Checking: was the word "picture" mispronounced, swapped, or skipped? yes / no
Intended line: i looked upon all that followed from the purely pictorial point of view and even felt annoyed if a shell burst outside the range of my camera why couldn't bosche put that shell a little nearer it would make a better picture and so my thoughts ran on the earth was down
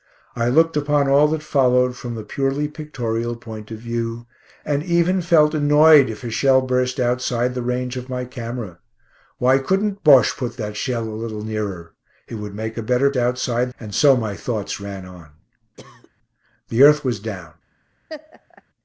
yes